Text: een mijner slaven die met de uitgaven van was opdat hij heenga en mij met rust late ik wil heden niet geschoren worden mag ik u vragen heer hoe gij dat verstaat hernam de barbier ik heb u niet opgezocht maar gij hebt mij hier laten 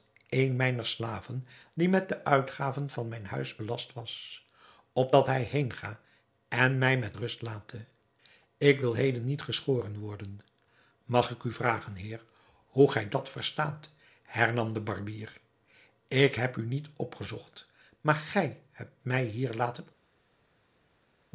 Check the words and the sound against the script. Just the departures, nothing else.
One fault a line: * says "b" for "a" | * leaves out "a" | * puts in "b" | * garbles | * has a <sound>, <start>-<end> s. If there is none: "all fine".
* puts in "mijn huis belast"